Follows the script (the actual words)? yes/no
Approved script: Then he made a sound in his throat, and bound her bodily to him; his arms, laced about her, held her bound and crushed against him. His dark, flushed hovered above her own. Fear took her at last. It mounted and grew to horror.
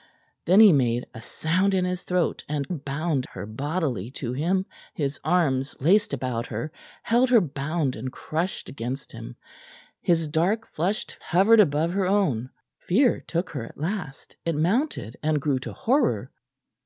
yes